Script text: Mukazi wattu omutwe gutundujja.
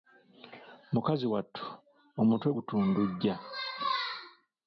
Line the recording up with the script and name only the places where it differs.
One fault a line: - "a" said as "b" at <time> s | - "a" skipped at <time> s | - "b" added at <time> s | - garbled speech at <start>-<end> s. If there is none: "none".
none